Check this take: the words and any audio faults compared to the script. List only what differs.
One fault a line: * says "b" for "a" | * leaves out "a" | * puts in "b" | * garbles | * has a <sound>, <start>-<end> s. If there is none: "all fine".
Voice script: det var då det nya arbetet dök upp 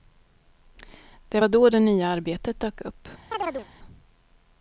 * has a chirp, 3.3-3.7 s